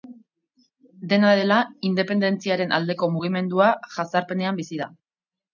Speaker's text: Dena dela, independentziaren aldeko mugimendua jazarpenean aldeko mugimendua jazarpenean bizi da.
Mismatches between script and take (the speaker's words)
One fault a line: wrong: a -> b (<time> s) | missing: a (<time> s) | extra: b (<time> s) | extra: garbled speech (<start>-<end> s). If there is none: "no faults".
missing: aldeko mugimendua jazarpenean (4.6 s)